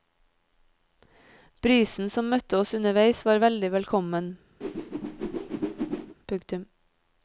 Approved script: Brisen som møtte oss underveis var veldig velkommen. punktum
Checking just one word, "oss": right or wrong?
right